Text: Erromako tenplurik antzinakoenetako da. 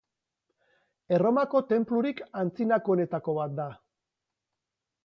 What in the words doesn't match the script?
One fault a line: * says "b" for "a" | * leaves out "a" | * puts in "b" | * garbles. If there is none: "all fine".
* puts in "bat"